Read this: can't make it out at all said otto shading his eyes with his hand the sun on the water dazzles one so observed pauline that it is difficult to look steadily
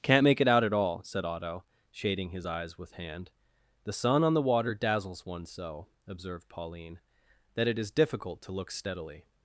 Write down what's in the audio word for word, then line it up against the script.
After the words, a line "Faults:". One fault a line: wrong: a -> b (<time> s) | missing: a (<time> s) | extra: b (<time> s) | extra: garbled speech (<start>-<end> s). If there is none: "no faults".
can't make it out at all said otto shading his eyes with hand the sun on the water dazzles one so observed pauline that it is difficult to look steadily
Faults:
missing: his (2.9 s)